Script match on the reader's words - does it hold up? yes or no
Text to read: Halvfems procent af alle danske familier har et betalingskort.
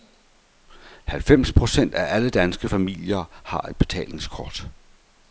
yes